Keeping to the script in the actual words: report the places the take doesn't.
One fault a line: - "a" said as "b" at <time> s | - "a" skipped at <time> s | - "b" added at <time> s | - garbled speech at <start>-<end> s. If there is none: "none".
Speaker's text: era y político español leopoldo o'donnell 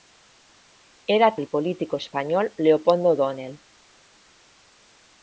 none